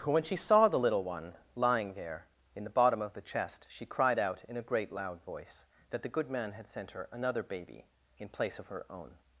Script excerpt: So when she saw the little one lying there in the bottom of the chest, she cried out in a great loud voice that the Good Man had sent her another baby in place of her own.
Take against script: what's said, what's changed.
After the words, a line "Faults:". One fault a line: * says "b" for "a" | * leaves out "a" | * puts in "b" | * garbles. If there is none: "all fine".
when she saw the little one lying there in the bottom of the chest, she cried out in a great loud voice that the Good Man had sent her another baby in place of her own.
Faults:
* leaves out "So"